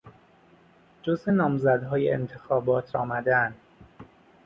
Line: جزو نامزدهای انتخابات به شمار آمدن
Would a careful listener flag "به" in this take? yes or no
yes